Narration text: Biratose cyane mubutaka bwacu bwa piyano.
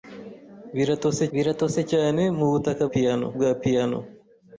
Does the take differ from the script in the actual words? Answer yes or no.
yes